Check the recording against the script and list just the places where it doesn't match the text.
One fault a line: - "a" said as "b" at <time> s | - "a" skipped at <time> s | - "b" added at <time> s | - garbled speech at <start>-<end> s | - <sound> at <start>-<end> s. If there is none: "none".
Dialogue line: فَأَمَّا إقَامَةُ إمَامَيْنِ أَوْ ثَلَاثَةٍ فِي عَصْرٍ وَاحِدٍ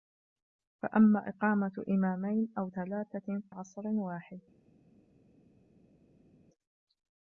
- "فِي" skipped at 3.4 s